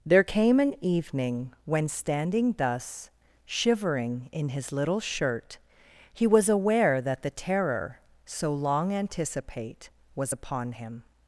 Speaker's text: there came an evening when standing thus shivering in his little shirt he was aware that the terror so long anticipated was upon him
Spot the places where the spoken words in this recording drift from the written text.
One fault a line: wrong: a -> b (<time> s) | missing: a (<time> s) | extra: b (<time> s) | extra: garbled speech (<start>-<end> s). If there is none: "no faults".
wrong: anticipated -> anticipate (8.9 s)